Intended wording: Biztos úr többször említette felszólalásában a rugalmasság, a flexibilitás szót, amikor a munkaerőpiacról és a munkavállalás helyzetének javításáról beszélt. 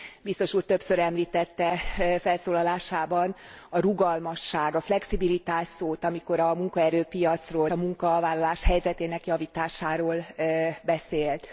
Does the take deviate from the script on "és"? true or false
true